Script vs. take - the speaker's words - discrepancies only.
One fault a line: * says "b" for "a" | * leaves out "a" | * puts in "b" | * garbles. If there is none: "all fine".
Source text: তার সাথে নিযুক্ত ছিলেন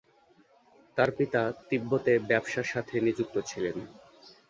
* puts in "পিতা তিব্বতে ব্যবসার"